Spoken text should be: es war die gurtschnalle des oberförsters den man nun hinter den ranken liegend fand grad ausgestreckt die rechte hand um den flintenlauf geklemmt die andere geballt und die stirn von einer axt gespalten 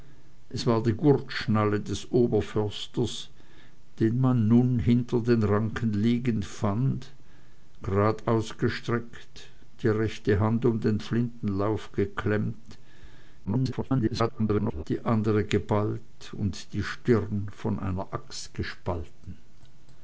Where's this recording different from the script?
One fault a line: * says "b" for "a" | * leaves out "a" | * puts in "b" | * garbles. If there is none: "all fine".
* garbles